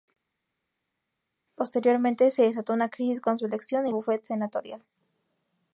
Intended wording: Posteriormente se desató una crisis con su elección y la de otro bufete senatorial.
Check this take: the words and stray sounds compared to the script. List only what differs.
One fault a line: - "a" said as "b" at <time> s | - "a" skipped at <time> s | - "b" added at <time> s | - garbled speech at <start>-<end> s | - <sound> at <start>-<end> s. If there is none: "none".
- "la de otro" skipped at 3.9 s